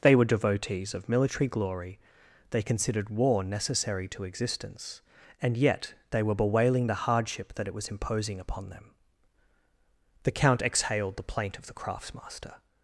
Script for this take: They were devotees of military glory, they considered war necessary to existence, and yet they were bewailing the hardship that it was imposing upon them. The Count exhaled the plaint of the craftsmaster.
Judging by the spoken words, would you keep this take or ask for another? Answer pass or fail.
pass